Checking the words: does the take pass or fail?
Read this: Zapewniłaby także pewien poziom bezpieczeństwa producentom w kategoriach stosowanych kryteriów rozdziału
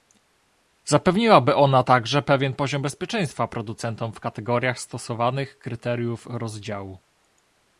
fail